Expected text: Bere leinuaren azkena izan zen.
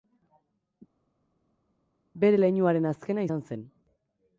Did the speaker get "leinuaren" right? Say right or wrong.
right